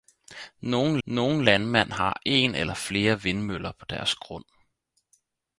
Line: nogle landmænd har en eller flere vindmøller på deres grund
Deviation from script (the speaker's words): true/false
true